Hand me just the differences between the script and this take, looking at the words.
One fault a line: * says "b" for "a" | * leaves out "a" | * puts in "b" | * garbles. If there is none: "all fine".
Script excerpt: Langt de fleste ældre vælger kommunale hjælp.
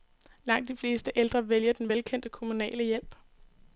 * puts in "den velkendte"